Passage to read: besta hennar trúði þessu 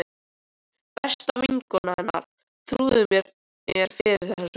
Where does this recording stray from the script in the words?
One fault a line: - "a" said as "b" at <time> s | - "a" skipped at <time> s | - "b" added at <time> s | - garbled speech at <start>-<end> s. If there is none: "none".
- "vinkona" added at 1.4 s
- "mér fyrir" added at 3.2 s